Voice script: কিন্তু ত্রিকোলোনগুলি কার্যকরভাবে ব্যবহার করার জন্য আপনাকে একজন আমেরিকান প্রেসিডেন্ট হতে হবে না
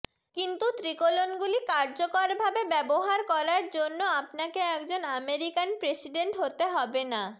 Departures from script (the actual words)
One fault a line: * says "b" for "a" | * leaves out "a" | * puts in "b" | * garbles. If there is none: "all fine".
all fine